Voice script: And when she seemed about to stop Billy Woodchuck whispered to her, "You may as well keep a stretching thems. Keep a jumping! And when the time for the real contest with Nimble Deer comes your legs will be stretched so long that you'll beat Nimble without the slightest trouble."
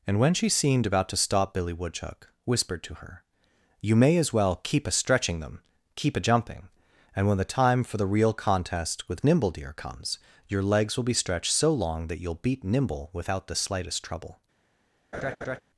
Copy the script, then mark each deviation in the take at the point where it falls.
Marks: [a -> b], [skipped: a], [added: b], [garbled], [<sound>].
And when she seemed about to stop Billy Woodchuck whispered to her, "You may as well keep a stretching [thems. -> them] Keep a jumping! And when the time for the real contest with Nimble Deer comes your legs will be stretched so long that you'll beat Nimble without the slightest trouble." [laugh]